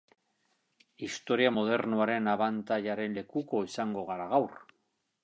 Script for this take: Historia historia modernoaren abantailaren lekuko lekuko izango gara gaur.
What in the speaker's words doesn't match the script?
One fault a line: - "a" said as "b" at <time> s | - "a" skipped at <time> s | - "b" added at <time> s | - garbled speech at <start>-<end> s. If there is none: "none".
- "historia" skipped at 1.5 s
- "lekuko" skipped at 3.6 s